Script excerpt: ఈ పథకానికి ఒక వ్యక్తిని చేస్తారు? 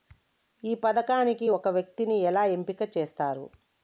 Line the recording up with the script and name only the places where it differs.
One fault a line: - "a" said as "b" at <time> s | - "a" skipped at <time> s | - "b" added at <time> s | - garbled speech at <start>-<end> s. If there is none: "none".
- "ఎలా ఎంపిక" added at 2.2 s